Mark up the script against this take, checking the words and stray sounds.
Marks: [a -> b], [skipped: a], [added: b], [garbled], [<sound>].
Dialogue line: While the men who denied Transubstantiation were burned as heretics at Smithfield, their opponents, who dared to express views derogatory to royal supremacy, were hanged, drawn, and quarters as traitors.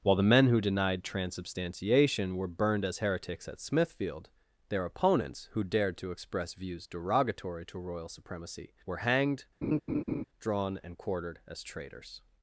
While the men who denied Transubstantiation were burned as heretics at Smithfield, their opponents, who dared to express views derogatory to royal supremacy, were hanged, [laugh] drawn, and [quarters -> quartered] as traitors.